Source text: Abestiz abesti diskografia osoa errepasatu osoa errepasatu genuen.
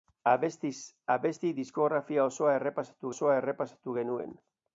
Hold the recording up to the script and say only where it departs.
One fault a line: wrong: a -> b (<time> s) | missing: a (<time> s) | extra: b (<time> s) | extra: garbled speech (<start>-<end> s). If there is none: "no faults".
no faults